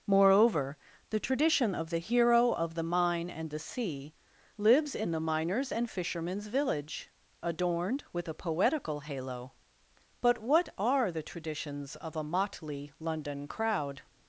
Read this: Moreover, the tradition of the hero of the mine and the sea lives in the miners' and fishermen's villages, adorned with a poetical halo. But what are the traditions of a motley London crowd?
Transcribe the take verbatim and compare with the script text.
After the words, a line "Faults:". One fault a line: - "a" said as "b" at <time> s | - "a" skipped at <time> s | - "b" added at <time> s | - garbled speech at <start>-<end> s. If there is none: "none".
Moreover, the tradition of the hero of the mine and the sea lives in the miners' and fishermen's village, adorned with a poetical halo. But what are the traditions of a motley London crowd?
Faults:
- "villages" said as "village" at 6.5 s